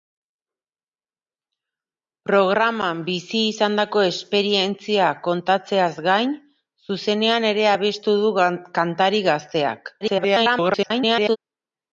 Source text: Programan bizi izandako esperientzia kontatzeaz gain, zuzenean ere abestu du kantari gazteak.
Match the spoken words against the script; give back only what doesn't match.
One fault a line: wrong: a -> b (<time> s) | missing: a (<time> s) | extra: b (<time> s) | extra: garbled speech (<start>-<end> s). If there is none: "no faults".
extra: garbled speech (10.0-11.4 s)